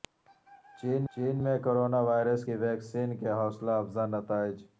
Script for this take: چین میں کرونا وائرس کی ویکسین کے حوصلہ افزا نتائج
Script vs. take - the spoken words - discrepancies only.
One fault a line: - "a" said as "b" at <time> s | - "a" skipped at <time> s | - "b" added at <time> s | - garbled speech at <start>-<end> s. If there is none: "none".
- "چین" added at 1.1 s